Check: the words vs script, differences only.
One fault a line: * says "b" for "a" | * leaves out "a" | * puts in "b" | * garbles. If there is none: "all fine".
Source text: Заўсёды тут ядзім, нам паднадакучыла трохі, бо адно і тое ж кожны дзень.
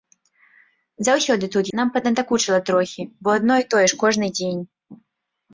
* leaves out "ядзім"